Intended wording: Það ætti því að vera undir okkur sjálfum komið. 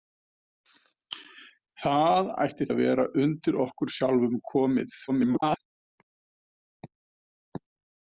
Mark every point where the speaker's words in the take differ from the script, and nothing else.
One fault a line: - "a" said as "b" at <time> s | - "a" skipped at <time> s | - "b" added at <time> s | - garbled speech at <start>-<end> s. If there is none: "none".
- "því" skipped at 2.7 s
- garbled speech at 5.1-5.6 s